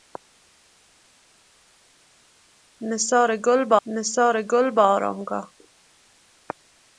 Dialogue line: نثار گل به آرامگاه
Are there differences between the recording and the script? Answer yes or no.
yes